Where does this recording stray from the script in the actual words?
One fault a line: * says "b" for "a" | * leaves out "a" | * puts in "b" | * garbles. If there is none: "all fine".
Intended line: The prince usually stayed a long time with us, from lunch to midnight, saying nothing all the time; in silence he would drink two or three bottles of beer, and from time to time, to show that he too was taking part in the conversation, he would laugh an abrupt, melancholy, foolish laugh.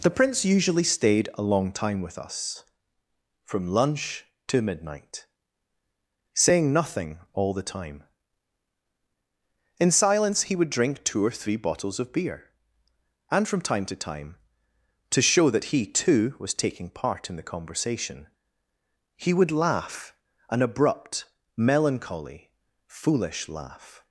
all fine